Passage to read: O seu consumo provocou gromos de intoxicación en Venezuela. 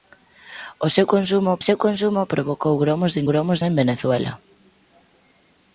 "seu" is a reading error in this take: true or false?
false